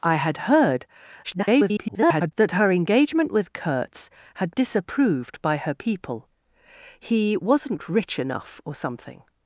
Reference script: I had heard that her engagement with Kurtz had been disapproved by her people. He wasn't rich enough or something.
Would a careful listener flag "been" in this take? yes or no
yes